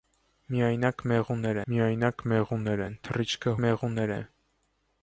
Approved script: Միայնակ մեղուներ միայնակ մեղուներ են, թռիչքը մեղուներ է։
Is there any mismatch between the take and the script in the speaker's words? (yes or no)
no